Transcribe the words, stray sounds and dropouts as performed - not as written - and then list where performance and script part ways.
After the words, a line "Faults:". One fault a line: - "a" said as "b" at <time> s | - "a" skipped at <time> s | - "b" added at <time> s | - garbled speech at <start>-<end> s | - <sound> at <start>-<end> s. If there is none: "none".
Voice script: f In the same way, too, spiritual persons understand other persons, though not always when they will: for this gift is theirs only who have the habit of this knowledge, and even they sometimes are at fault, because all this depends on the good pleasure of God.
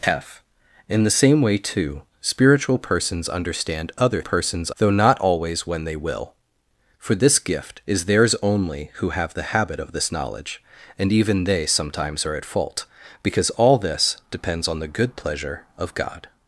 f In the same way, too, spiritual persons understand other persons, though not always when they will: for this gift is theirs only who have the habit of this knowledge, and even they sometimes are at fault, because all this depends on the good pleasure of God.
Faults:
none